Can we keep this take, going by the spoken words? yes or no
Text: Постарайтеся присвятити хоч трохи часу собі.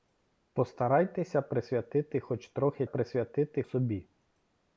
no